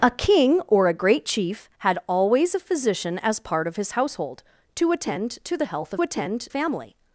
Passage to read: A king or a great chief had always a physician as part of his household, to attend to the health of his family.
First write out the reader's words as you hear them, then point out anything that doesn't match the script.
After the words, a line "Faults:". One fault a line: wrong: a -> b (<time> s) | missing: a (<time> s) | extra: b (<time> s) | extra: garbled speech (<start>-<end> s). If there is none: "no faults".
A king or a great chief had always a physician as part of his household, to attend to the health of attend family.
Faults:
wrong: his -> attend (6.0 s)